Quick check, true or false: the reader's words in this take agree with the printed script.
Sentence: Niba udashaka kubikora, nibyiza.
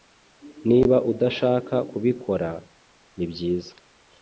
true